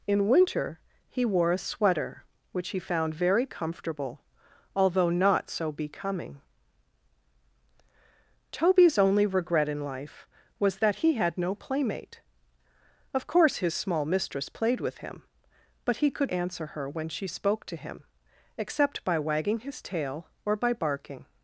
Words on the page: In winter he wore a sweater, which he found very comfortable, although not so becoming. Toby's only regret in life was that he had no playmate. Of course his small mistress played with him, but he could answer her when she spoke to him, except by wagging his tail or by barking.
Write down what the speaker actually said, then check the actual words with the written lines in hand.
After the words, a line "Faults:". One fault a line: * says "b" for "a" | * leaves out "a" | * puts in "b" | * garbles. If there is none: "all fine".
In winter he wore a sweater, which he found very comfortable, although not so becoming. Toby's only regret in life was that he had no playmate. Of course his small mistress played with him, but he could answer her when she spoke to him, except by wagging his tail or by barking.
Faults:
all fine